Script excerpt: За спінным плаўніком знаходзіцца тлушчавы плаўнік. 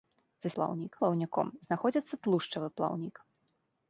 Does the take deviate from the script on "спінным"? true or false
true